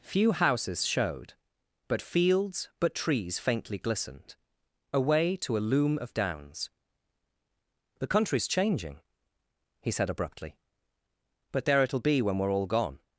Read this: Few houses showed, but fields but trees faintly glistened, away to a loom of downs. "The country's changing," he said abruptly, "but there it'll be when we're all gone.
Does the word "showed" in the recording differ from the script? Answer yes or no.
no